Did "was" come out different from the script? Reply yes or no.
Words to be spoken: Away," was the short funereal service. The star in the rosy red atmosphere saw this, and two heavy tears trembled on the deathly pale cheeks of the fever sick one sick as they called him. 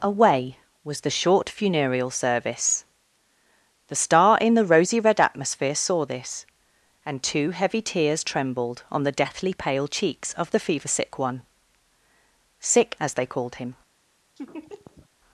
no